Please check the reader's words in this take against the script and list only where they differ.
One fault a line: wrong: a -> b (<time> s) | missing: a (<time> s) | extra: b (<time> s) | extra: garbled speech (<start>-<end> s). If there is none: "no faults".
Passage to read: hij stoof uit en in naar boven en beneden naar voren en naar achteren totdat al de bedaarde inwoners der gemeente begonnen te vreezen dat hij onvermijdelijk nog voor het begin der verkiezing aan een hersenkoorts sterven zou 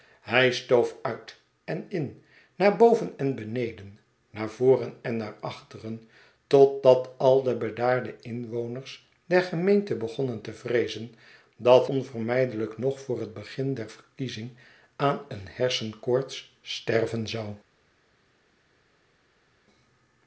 missing: hij (11.9 s)